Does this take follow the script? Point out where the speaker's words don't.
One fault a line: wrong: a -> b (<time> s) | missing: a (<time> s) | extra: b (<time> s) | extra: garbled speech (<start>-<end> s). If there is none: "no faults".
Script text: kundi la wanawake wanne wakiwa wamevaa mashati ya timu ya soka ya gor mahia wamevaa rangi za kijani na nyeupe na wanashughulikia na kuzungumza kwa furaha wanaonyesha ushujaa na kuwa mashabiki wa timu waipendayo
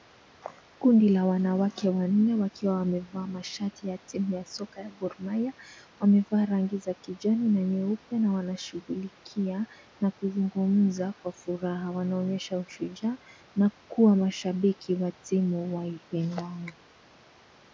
no faults